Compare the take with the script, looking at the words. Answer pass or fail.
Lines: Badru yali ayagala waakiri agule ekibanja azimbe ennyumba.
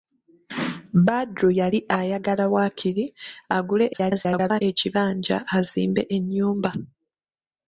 fail